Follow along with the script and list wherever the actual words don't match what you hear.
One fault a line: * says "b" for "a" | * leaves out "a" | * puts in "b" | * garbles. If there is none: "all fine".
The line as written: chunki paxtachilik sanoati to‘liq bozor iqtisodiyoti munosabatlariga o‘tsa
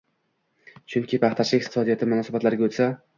* leaves out "sanoati to‘liq bozor"